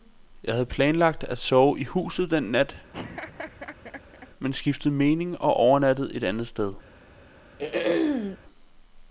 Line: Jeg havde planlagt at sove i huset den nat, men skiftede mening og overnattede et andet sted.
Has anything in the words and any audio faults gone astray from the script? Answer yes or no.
yes